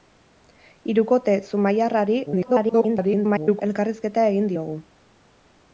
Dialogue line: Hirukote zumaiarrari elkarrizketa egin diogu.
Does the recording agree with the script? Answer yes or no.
no